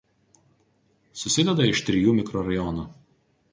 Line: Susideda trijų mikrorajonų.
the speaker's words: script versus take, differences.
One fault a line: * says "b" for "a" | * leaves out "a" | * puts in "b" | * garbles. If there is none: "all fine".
* puts in "iš"